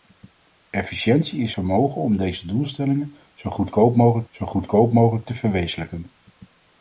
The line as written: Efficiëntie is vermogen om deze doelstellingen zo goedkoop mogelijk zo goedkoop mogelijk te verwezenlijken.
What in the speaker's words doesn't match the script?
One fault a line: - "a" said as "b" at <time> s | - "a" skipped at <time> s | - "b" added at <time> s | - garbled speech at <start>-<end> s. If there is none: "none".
none